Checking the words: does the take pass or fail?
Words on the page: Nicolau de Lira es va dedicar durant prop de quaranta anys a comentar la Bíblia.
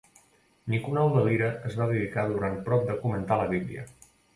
fail